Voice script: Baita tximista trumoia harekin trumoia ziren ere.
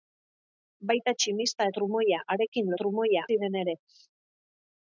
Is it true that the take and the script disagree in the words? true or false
false